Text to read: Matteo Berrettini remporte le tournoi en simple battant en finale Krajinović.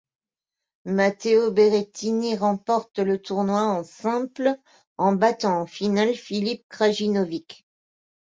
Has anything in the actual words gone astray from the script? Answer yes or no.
yes